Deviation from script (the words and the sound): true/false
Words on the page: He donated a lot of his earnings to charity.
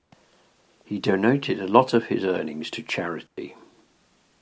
true